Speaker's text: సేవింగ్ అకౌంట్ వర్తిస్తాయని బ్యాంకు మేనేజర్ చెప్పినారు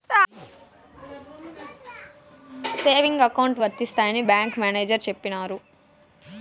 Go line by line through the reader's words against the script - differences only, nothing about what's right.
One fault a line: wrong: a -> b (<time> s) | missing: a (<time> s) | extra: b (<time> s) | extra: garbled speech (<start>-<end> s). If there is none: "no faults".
no faults